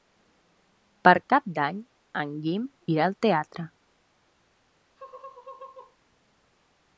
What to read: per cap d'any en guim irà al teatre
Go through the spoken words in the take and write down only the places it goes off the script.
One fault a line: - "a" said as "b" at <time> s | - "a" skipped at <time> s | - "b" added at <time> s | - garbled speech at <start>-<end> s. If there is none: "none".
none